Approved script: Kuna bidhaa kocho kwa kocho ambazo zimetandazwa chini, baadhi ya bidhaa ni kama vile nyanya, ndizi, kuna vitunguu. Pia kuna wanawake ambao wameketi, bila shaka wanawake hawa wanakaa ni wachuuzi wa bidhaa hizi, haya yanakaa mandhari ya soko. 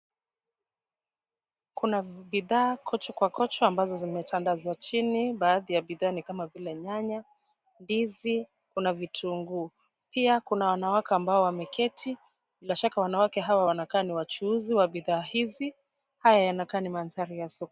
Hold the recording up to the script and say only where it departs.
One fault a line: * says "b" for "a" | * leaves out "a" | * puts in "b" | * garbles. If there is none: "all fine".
* puts in "ni"